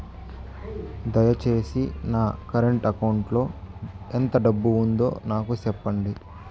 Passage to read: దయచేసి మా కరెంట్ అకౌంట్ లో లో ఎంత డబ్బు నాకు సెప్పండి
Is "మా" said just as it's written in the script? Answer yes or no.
no